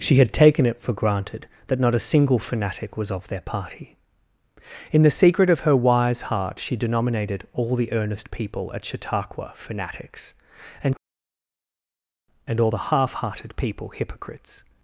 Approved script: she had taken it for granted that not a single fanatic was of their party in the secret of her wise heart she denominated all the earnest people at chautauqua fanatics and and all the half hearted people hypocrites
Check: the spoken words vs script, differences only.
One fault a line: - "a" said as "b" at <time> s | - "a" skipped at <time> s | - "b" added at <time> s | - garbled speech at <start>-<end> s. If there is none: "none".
none